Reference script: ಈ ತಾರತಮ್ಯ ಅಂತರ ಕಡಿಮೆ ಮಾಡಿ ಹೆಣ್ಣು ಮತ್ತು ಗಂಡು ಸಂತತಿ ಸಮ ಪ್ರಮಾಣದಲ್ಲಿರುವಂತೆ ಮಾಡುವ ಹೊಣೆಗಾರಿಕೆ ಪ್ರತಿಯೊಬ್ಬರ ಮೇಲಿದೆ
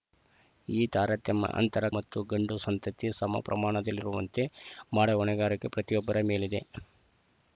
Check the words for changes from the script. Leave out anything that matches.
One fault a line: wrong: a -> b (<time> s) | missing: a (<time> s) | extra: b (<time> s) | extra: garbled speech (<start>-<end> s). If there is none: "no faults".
missing: ಕಡಿಮೆ ಮಾಡಿ ಹೆಣ್ಣು (1.9 s)